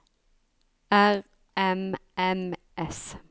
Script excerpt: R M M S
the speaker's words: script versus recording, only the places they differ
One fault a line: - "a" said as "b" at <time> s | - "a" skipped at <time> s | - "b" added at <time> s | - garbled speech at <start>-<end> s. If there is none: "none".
none